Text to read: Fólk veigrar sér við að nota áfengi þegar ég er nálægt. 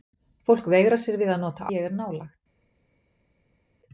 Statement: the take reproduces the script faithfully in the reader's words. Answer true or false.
false